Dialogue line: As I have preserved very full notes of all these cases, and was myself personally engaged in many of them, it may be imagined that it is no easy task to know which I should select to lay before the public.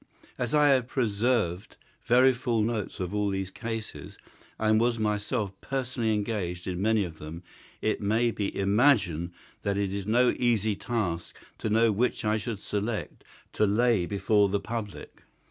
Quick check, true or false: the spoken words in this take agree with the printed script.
true